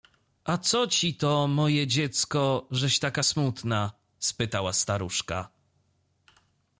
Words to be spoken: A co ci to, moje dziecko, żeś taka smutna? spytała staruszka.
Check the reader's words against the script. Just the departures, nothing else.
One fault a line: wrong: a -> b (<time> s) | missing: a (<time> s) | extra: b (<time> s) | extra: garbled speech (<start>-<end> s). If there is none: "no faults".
no faults